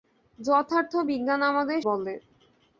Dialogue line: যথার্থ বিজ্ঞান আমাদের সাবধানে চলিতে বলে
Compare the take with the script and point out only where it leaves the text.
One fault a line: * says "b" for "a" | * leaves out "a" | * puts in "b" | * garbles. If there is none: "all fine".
* leaves out "সাবধানে চলিতে"